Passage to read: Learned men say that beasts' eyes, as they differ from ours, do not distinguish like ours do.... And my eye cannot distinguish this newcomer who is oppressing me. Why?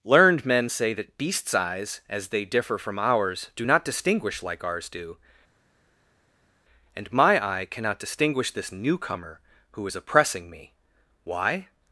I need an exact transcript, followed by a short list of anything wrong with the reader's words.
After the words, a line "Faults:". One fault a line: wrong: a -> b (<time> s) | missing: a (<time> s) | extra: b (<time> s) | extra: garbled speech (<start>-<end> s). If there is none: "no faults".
Learned men say that beasts' eyes, as they differ from ours, do not distinguish like ours do.... And my eye cannot distinguish this newcomer who is oppressing me. Why?
Faults:
no faults